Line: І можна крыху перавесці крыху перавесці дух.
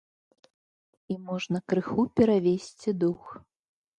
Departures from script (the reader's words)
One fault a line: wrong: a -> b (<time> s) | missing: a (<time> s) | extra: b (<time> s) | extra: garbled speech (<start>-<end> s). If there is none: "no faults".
missing: крыху перавесці (2.9 s)